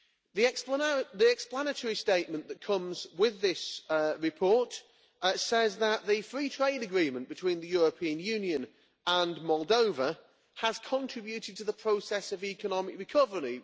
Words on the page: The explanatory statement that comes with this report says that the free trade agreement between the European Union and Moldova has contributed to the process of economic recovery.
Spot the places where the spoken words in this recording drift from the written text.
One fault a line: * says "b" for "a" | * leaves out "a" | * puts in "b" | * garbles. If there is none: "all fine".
all fine